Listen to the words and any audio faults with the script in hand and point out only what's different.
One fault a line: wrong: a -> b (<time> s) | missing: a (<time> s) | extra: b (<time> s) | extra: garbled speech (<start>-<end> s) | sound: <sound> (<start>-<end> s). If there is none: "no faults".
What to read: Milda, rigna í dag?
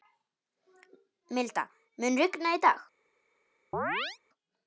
extra: mun (2.0 s)
sound: chirp (3.7-4.2 s)